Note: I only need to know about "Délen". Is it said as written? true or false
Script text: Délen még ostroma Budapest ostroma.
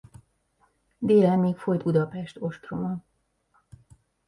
true